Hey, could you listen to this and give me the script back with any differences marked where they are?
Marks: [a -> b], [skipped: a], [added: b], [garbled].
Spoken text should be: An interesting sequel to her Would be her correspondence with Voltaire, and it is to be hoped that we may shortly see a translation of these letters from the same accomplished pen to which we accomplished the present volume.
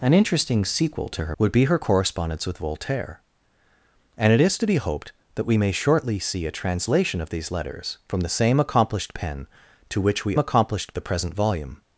An interesting sequel to her Would be her correspondence with Voltaire, and it is to be hoped that we may shortly see a translation of these letters from the same accomplished pen to which we accomplished the present volume.